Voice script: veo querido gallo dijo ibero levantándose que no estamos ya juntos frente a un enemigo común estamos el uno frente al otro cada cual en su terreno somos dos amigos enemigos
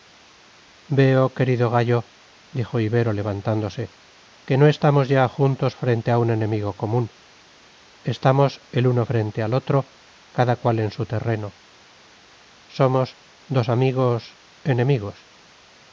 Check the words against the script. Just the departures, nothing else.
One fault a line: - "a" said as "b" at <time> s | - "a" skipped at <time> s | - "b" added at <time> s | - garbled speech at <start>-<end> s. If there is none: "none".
none